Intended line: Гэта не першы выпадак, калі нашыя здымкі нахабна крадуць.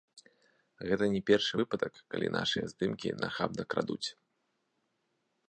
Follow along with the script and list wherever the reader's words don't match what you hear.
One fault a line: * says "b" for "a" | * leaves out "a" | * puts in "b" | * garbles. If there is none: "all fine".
all fine